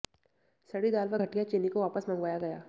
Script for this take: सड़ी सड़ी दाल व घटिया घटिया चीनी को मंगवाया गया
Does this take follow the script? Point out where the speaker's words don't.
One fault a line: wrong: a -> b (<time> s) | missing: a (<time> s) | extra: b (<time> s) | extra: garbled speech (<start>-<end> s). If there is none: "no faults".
missing: सड़ी (0.9 s)
missing: घटिया (1.4 s)
extra: वापस (1.8 s)